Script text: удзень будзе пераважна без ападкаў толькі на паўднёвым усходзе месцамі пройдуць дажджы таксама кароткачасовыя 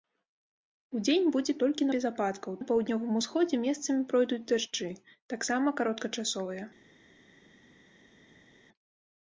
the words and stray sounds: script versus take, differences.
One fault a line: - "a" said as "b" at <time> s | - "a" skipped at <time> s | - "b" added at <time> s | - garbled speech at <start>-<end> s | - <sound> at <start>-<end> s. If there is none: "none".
- "пераважна" said as "толькі" at 1.6 s
- "толькі" skipped at 2.6 s